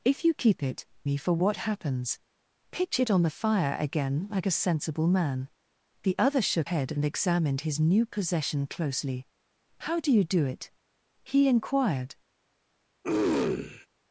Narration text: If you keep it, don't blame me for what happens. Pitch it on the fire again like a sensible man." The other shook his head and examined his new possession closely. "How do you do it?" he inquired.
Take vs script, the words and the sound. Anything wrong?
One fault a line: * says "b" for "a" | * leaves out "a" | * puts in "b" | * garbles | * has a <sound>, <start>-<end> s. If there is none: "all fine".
* leaves out "don't blame"
* leaves out "his"
* has a throat clearing, 13.0-13.9 s